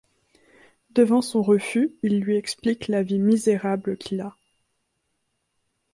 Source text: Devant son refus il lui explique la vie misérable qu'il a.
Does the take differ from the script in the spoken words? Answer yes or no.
no